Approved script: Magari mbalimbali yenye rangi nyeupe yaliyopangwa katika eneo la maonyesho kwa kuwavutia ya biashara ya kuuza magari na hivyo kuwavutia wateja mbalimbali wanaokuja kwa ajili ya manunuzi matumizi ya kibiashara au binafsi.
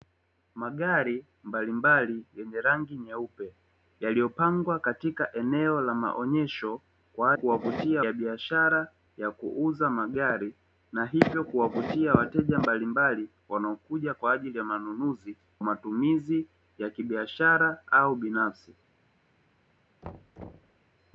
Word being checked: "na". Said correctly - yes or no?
yes